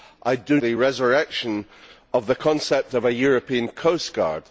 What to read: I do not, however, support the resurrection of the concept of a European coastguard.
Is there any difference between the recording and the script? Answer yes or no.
yes